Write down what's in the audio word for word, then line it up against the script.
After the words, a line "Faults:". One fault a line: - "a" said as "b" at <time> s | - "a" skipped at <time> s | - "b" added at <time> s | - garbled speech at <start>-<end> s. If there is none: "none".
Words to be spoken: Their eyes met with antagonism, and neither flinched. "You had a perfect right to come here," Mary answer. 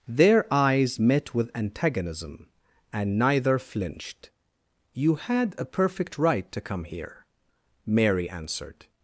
Their eyes met with antagonism, and neither flinched. "You had a perfect right to come here," Mary answered.
Faults:
- "answer" said as "answered" at 8.3 s